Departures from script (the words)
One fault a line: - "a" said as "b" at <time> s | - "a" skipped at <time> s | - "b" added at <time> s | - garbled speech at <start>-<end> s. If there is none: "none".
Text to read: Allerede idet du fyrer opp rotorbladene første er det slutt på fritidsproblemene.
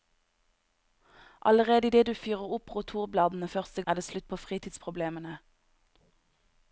none